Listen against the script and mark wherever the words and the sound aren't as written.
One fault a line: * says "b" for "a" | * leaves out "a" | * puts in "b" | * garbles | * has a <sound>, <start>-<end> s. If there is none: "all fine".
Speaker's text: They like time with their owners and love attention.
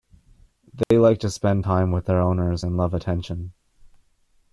* has a dropout, 0.8-0.9 s
* puts in "to spend"